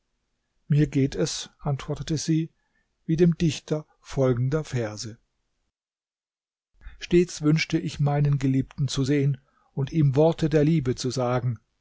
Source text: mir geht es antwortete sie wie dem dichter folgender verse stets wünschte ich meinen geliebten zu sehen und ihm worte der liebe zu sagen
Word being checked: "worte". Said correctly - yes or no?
yes